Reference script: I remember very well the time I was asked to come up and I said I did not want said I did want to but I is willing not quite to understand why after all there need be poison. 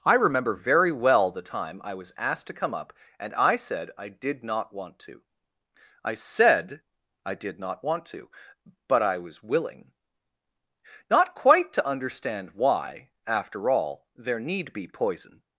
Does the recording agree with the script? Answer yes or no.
no